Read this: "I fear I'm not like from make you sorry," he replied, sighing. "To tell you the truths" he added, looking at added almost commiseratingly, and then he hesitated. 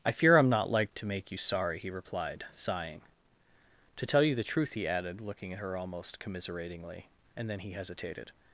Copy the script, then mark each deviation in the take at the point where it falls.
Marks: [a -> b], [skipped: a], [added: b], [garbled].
"I fear I'm not like [from -> to] make you sorry," he replied, sighing. "To tell you the [truths" -> truth] he added, looking at [added -> her] almost commiseratingly, and then he hesitated.